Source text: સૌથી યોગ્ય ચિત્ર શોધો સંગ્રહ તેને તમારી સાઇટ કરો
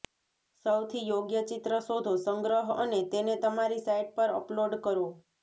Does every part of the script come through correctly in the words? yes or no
no